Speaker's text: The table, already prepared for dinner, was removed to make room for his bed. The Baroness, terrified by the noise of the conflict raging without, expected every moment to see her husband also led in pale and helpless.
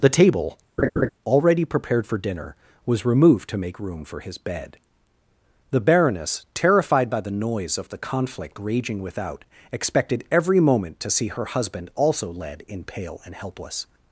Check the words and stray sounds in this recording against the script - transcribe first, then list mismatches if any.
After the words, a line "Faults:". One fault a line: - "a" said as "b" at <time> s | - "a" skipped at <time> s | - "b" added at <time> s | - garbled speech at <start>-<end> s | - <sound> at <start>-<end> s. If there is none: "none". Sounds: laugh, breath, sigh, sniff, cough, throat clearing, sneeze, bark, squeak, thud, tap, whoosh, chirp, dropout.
The table, already prepared for dinner, was removed to make room for his bed. The Baroness, terrified by the noise of the conflict raging without, expected every moment to see her husband also led in pale and helpless.
Faults:
- laugh at 0.8-1.1 s